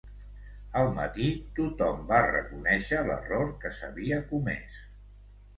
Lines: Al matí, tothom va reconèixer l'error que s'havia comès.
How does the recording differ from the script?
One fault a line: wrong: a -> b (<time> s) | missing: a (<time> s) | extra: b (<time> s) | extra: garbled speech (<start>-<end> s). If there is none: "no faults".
no faults